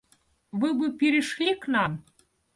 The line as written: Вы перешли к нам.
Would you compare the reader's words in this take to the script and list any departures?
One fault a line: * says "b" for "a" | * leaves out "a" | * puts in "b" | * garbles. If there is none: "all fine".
* puts in "бы"